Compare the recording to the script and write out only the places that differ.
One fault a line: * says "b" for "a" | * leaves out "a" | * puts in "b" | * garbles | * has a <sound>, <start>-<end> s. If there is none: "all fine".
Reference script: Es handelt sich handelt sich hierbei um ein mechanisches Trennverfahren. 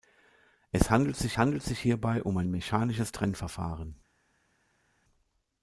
all fine